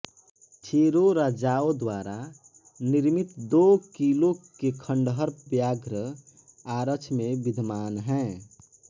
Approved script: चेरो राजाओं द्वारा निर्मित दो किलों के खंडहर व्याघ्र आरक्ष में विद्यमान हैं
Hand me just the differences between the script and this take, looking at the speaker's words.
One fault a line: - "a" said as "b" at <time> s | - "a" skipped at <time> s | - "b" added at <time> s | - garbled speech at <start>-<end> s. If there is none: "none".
none